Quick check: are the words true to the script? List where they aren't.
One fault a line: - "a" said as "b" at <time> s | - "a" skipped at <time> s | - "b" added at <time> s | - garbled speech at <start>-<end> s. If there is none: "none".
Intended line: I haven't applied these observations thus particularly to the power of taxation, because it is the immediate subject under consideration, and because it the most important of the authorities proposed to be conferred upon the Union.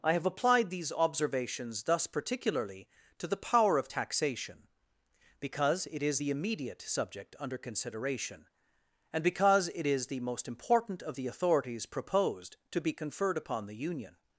- "haven't" said as "have" at 0.1 s
- "is" added at 9.9 s